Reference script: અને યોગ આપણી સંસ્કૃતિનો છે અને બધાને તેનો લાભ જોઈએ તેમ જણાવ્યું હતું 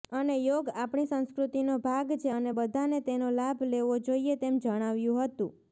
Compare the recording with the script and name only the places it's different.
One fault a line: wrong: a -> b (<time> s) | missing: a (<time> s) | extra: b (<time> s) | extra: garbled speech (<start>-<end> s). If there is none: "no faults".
extra: ભાગ (1.8 s)
extra: લેવો (3.7 s)